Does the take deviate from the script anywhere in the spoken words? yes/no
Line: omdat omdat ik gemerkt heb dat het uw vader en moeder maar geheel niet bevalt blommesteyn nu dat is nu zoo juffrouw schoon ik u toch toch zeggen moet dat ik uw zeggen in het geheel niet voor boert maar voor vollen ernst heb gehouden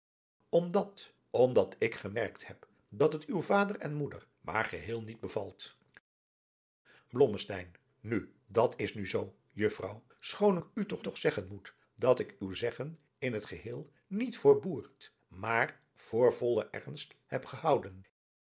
no